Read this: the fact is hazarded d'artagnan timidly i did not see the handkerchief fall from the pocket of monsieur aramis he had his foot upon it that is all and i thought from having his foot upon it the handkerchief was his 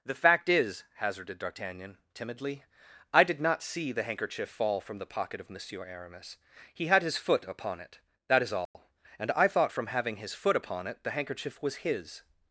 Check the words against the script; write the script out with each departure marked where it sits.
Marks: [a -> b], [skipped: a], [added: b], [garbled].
the fact is hazarded d'artagnan timidly i did not see the handkerchief fall from the pocket of monsieur aramis he had his foot upon it that is all and i thought from having his foot upon it the handkerchief was his